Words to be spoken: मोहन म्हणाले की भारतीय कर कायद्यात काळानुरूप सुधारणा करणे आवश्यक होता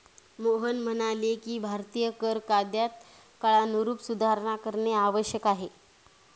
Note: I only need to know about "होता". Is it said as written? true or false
false